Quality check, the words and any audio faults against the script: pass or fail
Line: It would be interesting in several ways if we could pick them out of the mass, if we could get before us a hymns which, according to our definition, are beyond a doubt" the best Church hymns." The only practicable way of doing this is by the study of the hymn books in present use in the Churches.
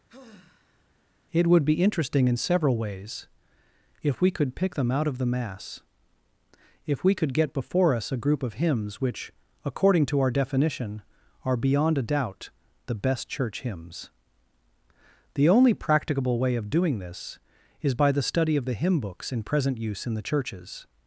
fail